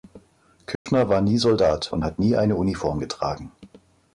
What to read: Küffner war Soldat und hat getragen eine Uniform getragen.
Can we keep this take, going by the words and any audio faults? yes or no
no